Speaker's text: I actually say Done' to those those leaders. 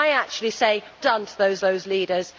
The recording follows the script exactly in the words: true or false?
true